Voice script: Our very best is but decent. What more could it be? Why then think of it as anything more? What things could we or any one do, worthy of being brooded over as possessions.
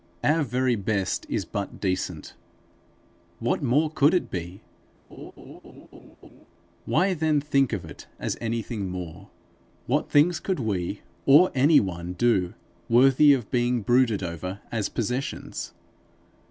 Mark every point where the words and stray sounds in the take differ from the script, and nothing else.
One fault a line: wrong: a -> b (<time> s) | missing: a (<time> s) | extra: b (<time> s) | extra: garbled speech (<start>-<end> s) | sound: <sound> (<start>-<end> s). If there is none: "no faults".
sound: laugh (5.1-6.5 s)